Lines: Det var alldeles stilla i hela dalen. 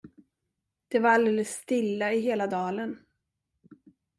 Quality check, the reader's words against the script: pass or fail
pass